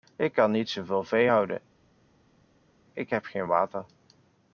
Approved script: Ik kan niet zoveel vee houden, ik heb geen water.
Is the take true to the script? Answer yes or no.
yes